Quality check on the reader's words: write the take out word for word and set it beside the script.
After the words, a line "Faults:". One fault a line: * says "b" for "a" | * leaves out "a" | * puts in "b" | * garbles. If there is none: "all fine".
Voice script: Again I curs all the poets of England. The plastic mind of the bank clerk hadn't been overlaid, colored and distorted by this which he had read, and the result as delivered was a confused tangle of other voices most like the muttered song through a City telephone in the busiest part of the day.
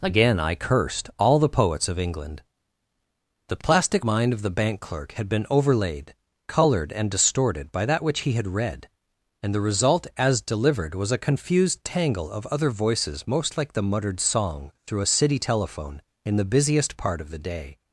Again I cursed all the poets of England. The plastic mind of the bank clerk had been overlaid, colored and distorted by that which he had read, and the result as delivered was a confused tangle of other voices most like the muttered song through a City telephone in the busiest part of the day.
Faults:
* says "cursed" for "curs"
* says "had" for "hadn't"
* says "that" for "this"